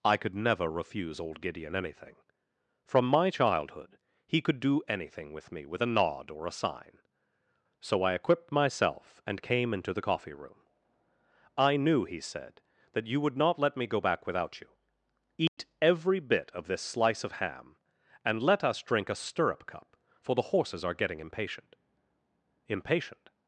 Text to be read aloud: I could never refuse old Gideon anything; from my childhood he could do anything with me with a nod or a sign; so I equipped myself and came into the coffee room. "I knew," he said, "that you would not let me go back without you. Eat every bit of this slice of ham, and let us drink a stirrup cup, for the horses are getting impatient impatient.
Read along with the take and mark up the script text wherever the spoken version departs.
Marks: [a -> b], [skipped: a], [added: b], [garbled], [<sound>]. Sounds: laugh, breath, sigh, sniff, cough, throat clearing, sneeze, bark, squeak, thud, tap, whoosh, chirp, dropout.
I could never refuse old Gideon anything; from my childhood he could do anything with me with a nod or a sign; so I equipped myself and came into the coffee room. "I knew," he said, "that you would not let me go back without you. Eat [dropout] every bit of this slice of ham, and let us drink a stirrup cup, for the horses are getting impatient impatient.